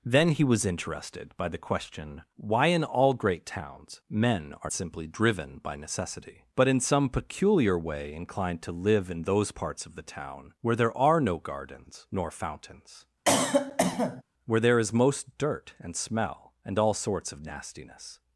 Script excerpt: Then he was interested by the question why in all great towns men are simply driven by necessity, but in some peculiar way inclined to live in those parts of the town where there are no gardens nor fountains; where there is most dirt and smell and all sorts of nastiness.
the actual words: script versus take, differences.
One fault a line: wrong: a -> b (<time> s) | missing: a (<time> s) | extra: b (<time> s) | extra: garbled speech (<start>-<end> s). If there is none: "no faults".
no faults